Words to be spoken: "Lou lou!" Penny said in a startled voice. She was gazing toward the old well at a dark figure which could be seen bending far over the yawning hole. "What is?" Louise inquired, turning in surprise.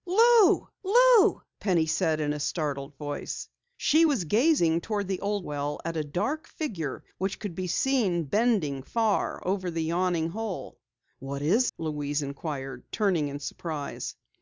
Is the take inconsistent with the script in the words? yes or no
no